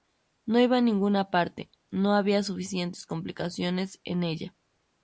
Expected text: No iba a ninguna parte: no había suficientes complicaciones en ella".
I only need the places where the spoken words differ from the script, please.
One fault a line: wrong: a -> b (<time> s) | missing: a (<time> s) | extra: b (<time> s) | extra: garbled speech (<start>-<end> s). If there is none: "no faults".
no faults